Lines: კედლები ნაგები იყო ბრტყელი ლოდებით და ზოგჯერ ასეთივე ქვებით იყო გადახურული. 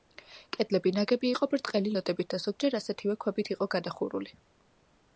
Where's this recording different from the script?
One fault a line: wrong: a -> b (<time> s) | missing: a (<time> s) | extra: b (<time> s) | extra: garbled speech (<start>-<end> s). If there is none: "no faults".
no faults